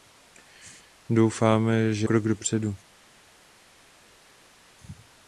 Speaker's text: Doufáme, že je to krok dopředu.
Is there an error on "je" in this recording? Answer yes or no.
yes